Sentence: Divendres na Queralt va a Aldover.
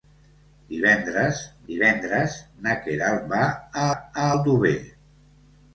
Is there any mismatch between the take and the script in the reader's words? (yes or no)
yes